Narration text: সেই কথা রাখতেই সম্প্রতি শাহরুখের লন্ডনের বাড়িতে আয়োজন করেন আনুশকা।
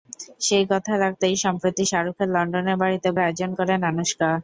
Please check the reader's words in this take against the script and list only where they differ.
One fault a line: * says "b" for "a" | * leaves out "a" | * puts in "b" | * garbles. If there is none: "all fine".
all fine